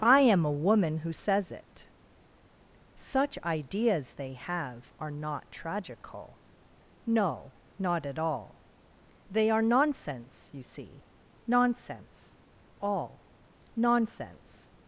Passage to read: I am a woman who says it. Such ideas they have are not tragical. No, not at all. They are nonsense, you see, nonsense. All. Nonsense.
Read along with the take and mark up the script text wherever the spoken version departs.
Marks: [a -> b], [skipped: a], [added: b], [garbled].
I am a woman who says it. Such ideas they have are not tragical. No, not at all. They are nonsense, you see, nonsense. All. Nonsense.